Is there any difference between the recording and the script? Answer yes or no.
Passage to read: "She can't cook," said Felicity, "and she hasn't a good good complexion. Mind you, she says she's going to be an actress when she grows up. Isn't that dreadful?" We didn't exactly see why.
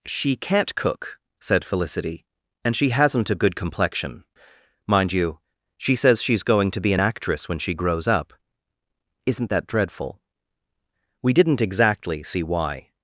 yes